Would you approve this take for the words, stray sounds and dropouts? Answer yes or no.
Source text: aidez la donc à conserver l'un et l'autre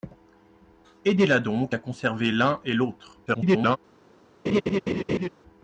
no